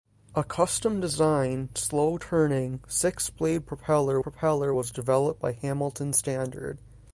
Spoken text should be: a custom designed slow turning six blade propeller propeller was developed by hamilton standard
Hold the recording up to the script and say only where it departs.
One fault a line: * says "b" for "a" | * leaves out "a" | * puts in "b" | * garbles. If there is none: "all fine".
all fine